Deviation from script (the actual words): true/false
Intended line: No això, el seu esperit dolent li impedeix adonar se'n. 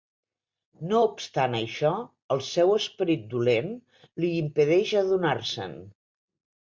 true